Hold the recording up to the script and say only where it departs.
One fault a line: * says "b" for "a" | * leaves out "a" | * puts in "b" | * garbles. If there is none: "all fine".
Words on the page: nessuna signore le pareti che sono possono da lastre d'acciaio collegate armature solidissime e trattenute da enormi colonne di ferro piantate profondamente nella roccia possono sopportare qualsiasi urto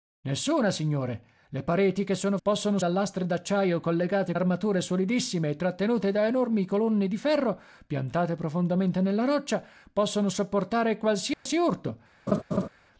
all fine